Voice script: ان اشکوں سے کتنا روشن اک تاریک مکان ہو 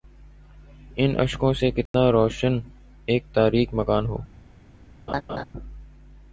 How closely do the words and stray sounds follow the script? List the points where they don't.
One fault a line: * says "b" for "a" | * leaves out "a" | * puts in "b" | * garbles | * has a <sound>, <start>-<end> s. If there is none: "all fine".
* has a dropout, 1.9-1.9 s
* has a laugh, 5.1-5.4 s